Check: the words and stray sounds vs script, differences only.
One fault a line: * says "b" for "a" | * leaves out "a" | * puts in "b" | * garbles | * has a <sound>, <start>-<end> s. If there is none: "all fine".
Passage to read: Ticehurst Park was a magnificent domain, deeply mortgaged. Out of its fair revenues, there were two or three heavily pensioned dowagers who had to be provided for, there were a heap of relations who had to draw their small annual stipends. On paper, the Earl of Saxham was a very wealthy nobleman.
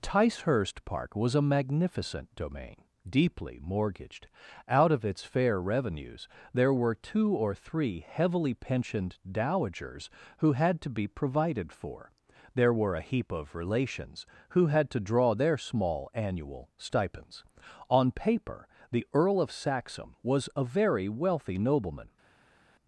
all fine